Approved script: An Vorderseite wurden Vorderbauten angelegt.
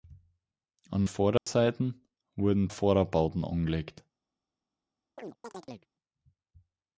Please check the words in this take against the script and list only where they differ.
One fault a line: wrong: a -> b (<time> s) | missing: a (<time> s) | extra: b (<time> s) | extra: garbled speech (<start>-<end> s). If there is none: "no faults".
no faults